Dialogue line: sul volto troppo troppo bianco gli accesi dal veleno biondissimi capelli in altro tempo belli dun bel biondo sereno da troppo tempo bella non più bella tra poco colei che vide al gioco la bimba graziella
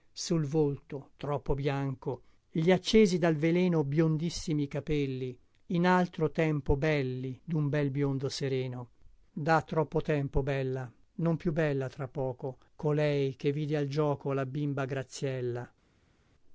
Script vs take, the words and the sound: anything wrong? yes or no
yes